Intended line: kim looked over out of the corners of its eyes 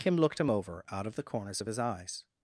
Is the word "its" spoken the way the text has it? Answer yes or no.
no